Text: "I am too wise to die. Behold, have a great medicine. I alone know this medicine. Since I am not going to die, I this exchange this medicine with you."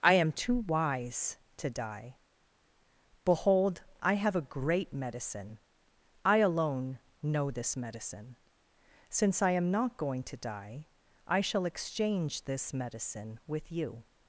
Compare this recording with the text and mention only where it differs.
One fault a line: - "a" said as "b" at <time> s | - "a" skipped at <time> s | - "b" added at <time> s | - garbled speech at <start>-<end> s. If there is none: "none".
- "I" added at 4.0 s
- "this" said as "shall" at 11.4 s